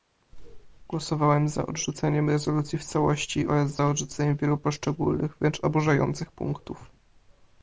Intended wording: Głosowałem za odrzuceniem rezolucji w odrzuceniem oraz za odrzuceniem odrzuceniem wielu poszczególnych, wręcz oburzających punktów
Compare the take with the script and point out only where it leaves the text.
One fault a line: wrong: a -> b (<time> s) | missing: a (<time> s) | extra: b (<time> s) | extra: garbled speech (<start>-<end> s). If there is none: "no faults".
wrong: odrzuceniem -> całości (2.9 s)
missing: odrzuceniem (4.4 s)